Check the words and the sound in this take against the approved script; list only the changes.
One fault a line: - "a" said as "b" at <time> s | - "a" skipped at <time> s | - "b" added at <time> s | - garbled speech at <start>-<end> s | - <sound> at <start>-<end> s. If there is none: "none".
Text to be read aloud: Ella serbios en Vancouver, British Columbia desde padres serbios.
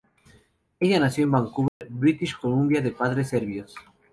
- "serbios" said as "nació" at 1.0 s
- dropout at 1.7-1.8 s
- "desde" said as "de" at 2.8 s